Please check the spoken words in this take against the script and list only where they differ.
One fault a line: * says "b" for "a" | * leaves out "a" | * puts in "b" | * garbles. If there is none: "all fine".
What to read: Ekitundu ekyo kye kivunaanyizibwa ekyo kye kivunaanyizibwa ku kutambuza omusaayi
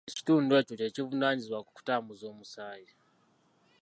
* leaves out "ekyo kye kivunaanyizibwa"